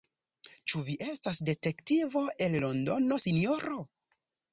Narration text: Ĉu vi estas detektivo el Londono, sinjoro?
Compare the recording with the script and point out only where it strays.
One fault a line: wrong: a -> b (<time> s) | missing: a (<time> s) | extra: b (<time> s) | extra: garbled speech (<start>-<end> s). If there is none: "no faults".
no faults